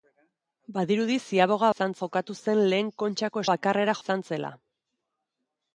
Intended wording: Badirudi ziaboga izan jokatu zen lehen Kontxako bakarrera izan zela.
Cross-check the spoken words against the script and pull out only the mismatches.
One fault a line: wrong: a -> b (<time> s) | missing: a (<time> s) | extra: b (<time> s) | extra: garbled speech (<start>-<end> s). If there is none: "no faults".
no faults